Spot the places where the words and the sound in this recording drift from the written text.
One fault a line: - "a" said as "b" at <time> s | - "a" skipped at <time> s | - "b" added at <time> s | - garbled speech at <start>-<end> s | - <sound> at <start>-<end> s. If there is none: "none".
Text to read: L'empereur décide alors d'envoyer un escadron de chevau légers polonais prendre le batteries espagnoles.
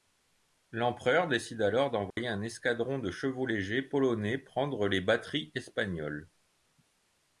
- dropout at 2.1-2.2 s
- "le" said as "les" at 4.9 s